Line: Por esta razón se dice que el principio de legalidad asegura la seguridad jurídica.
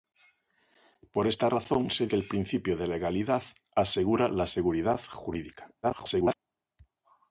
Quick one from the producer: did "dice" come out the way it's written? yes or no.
no